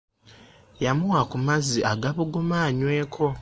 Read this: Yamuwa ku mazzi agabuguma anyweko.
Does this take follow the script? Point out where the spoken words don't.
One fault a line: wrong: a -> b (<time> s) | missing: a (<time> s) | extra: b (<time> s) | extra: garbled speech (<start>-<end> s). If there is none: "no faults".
no faults